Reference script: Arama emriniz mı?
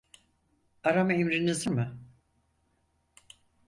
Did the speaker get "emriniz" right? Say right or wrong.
right